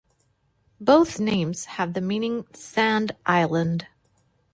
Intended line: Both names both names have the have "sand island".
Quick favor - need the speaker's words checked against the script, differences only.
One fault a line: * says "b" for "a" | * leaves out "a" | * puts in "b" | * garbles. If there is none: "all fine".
* leaves out "both names"
* says "meaning" for "have"